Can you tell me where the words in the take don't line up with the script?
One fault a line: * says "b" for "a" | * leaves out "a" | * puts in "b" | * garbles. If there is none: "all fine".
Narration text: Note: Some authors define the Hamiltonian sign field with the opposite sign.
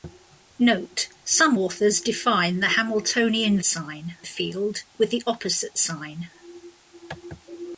all fine